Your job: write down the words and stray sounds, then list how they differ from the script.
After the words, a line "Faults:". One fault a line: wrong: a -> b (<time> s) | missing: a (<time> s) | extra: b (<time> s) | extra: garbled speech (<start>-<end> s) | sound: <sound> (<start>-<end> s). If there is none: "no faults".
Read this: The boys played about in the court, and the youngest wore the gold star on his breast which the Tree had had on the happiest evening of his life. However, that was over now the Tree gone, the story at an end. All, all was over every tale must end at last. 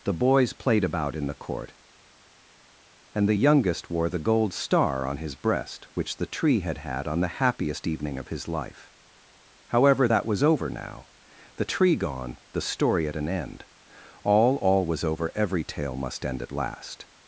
The boys played about in the court, and the youngest wore the gold star on his breast which the Tree had had on the happiest evening of his life. However, that was over now the Tree gone, the story at an end. All, all was over every tale must end at last.
Faults:
no faults